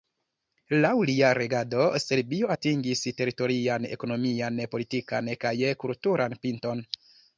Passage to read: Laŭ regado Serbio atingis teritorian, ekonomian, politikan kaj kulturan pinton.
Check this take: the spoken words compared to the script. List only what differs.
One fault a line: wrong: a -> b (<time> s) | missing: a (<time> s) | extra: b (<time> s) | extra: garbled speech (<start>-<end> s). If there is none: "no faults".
extra: lia (1.1 s)